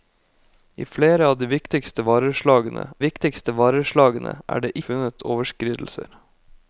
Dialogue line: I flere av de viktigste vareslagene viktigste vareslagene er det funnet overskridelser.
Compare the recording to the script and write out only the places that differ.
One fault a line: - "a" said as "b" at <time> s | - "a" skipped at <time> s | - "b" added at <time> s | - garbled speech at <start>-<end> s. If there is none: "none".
none